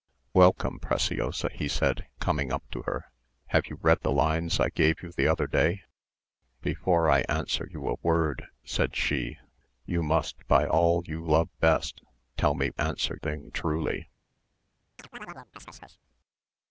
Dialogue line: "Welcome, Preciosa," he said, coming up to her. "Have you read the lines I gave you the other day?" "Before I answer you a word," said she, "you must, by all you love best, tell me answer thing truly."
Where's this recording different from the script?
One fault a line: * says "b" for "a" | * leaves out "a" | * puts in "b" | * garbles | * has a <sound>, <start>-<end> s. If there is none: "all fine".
* has a chirp, 15.0-16.0 s